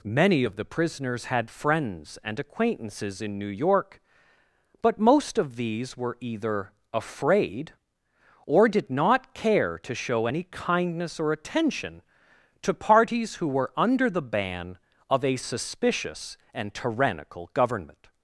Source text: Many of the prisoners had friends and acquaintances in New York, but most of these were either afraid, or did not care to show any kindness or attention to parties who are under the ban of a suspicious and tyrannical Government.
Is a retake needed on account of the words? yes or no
yes